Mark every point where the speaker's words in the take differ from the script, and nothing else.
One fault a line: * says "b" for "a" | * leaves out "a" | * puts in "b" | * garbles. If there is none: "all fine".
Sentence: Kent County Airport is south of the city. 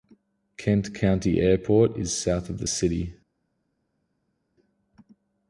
all fine